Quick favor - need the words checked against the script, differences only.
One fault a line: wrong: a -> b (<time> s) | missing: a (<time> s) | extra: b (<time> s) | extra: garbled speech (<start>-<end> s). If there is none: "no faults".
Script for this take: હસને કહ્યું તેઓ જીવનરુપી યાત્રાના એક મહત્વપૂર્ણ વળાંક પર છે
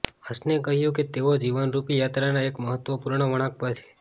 extra: કે (0.9 s)